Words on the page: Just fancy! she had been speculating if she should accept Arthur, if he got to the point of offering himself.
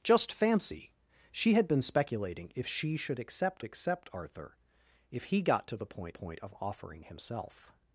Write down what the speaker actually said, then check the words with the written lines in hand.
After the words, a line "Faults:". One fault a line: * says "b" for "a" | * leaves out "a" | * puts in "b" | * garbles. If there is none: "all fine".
Just fancy! she had been speculating if she should accept accept Arthur, if he got to the point point of offering himself.
Faults:
* puts in "accept"
* puts in "point"